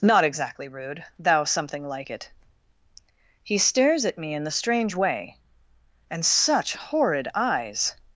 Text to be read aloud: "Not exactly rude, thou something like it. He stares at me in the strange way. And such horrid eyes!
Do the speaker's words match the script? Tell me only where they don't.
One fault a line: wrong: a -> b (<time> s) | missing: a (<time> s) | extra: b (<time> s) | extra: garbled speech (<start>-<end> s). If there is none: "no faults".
no faults